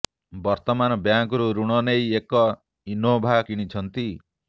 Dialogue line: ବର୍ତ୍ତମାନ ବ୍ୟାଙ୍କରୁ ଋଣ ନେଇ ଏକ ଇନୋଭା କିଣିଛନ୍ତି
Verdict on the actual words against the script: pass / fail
pass